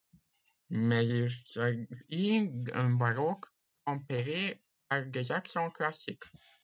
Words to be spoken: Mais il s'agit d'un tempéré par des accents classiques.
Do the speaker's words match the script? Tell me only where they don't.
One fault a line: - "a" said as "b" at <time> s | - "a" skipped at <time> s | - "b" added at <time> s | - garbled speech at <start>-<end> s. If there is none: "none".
- "baroque" added at 2.9 s